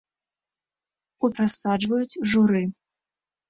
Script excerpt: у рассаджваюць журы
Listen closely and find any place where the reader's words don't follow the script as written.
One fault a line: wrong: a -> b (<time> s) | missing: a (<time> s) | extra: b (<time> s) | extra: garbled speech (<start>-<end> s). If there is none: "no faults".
no faults